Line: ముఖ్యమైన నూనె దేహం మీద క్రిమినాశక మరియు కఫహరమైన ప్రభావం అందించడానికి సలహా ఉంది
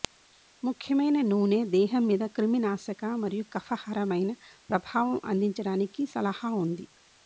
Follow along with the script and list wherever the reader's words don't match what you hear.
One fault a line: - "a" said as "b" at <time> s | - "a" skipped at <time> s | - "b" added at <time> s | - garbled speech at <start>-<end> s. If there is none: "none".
none